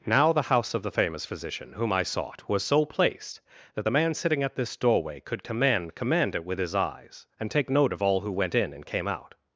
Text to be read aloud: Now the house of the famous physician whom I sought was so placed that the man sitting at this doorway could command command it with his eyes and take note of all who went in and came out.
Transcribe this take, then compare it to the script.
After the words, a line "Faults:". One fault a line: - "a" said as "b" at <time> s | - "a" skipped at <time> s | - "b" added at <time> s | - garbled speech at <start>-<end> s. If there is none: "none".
Now the house of the famous physician whom I sought was so placed that the man sitting at this doorway could command command it with his eyes and take note of all who went in and came out.
Faults:
none